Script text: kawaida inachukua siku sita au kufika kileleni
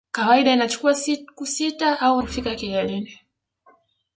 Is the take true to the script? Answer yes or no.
yes